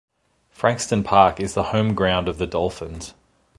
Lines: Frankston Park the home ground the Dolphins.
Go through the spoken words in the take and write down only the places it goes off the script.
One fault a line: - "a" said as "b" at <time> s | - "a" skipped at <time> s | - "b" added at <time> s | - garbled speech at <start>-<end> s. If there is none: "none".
- "is" added at 1.4 s
- "of" added at 2.3 s